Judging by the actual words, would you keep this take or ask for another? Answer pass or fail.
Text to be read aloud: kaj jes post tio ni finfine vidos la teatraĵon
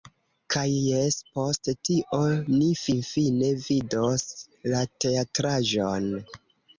pass